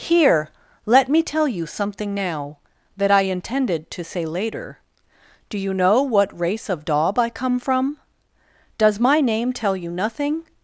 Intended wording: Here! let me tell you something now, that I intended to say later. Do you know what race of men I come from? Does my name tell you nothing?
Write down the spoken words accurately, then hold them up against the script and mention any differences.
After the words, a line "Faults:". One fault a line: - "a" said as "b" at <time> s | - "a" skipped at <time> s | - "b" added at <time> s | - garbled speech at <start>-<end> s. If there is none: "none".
Here! let me tell you something now, that I intended to say later. Do you know what race of daub I come from? Does my name tell you nothing?
Faults:
- "men" said as "daub" at 6.9 s